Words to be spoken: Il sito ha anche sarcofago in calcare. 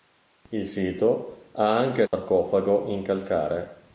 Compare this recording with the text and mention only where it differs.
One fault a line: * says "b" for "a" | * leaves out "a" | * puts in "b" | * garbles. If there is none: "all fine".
all fine